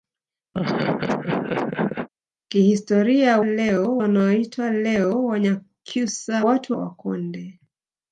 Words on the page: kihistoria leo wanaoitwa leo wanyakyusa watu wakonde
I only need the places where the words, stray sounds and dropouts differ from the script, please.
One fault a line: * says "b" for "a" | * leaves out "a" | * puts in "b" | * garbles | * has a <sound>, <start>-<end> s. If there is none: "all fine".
* has a laugh, 0.5-2.1 s